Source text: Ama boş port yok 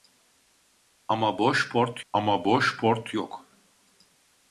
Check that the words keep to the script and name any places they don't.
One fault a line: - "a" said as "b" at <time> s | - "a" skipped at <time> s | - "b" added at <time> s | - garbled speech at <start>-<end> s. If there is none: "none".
- "ama boş port" added at 2.1 s